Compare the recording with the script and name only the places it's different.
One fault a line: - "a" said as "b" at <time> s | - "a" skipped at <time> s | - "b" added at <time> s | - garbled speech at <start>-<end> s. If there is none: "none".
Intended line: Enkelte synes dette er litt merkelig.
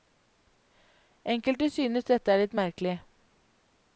none